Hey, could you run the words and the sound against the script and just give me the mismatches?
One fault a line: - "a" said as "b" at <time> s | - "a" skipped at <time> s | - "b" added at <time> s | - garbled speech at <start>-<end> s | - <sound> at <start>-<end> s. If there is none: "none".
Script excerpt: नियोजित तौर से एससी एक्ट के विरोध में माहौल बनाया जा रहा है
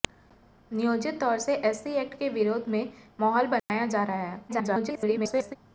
- dropout at 3.6-3.7 s
- garbled speech at 4.5-5.6 s